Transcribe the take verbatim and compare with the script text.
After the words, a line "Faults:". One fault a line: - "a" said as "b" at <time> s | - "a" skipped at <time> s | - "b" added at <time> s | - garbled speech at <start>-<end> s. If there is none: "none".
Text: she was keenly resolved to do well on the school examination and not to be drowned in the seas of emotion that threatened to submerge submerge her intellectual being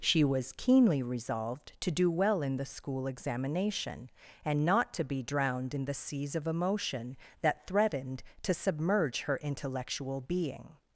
she was keenly resolved to do well in the school examination and not to be drowned in the seas of emotion that threatened to submerge her intellectual being
Faults:
- "on" said as "in" at 2.4 s
- "submerge" skipped at 9.2 s